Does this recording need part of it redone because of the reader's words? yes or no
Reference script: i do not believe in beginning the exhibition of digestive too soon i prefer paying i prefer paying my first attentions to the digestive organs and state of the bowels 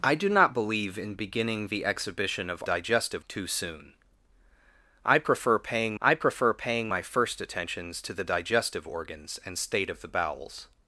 no